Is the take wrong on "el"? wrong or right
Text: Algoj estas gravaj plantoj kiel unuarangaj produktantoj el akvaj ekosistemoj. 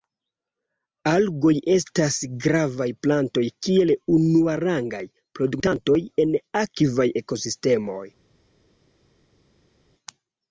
wrong